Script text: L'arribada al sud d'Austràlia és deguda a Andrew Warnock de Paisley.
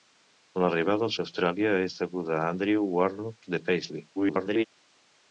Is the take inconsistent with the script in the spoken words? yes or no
yes